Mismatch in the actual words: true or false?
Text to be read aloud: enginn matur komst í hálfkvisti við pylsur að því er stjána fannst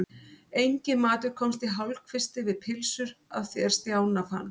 false